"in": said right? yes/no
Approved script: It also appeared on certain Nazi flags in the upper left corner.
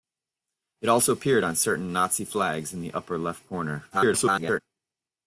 yes